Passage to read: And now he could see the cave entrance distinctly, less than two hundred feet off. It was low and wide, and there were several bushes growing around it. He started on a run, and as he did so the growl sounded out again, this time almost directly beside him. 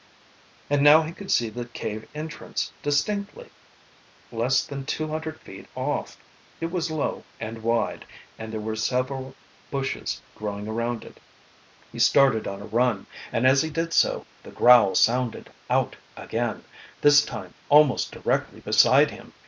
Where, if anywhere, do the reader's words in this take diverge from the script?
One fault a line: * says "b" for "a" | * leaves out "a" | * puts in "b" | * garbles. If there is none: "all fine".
all fine